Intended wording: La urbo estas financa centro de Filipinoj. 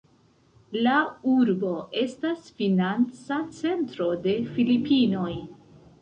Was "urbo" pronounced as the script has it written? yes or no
yes